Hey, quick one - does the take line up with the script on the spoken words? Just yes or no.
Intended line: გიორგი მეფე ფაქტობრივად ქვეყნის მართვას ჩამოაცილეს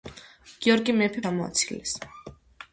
no